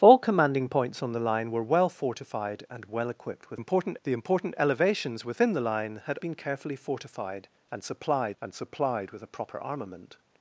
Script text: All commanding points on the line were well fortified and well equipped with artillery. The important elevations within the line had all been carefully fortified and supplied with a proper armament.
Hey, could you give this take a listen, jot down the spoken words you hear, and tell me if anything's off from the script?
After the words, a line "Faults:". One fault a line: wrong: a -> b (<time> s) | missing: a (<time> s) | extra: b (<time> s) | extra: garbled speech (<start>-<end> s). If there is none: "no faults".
All commanding points on the line were well fortified and well equipped with important. The important elevations within the line had been carefully fortified and supplied and supplied with a proper armament.
Faults:
wrong: artillery -> important (3.5 s)
missing: all (6.2 s)
extra: and supplied (8.4 s)